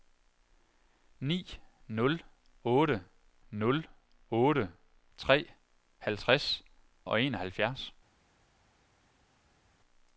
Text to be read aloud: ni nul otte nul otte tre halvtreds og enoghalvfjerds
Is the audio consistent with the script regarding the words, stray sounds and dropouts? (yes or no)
yes